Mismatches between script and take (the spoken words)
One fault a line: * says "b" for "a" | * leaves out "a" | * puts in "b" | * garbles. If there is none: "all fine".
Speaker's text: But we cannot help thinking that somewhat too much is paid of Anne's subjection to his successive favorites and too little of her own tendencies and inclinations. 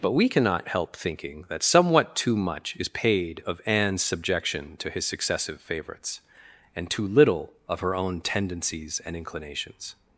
all fine